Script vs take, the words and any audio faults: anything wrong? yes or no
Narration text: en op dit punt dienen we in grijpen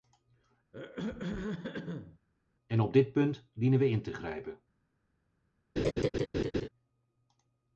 yes